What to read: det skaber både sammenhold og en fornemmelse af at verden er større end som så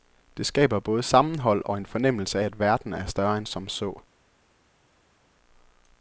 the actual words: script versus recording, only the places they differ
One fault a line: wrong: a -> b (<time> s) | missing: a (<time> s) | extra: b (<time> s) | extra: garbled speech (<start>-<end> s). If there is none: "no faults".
no faults